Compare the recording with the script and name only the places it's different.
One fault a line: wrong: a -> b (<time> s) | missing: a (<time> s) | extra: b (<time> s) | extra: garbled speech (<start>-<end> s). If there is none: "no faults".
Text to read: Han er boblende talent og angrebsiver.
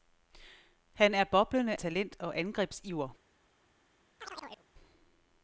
no faults